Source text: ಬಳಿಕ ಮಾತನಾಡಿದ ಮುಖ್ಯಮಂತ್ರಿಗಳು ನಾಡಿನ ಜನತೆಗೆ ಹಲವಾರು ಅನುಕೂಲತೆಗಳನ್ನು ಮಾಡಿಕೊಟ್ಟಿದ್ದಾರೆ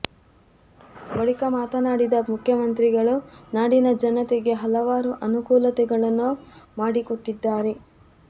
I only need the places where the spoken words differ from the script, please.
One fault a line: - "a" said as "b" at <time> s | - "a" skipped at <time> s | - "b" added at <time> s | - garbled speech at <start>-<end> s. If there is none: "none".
none